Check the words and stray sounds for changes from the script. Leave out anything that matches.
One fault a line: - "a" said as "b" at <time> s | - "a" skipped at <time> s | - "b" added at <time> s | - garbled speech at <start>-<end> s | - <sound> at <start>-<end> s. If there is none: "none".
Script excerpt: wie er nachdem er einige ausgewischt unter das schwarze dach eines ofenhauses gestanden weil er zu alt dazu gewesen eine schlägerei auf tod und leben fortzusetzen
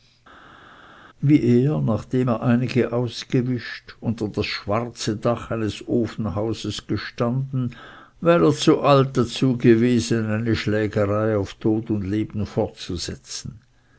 none